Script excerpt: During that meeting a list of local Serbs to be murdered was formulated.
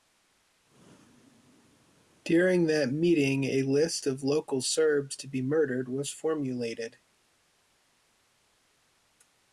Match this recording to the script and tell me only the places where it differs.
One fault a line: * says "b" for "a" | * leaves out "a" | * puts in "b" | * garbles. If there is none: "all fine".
all fine